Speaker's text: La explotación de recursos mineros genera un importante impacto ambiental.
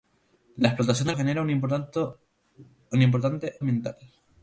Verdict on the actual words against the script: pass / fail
fail